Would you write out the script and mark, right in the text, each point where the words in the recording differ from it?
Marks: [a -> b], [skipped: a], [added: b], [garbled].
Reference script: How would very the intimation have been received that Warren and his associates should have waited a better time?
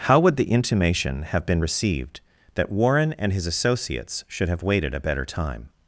How would [skipped: very] the intimation have been received that Warren and his associates should have waited a better time?